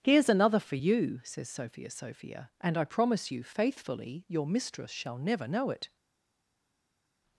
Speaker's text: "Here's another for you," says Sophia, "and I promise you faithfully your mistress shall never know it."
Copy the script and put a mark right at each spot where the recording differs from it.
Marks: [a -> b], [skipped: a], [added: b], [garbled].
"Here's another for you," says Sophia, [added: Sophia] "and I promise you faithfully your mistress shall never know it."